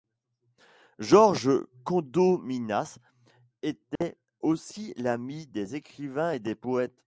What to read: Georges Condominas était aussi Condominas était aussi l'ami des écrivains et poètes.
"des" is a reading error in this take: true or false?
false